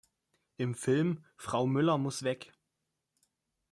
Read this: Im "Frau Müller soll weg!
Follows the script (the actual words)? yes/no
no